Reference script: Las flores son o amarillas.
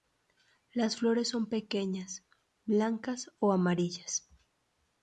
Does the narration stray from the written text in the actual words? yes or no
yes